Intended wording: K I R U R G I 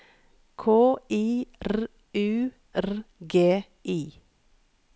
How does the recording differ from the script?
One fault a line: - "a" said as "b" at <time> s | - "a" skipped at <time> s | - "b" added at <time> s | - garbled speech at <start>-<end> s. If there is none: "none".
none